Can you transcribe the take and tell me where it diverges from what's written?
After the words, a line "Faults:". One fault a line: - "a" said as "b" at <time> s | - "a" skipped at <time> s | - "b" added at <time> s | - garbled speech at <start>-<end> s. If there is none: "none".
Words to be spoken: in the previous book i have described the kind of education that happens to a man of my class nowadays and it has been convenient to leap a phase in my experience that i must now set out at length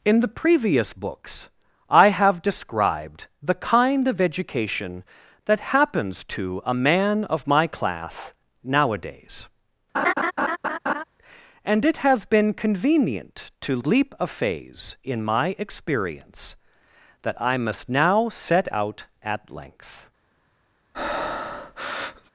in the previous books i have described the kind of education that happens to a man of my class nowadays and it has been convenient to leap a phase in my experience that i must now set out at length
Faults:
- "book" said as "books" at 0.9 s